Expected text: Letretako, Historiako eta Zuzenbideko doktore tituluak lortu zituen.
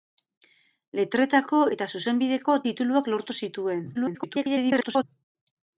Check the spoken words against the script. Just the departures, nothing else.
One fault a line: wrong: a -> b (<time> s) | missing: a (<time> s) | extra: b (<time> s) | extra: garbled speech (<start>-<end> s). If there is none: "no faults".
missing: Historiako (1.6 s)
missing: doktore (2.6 s)
extra: garbled speech (3.9-5.0 s)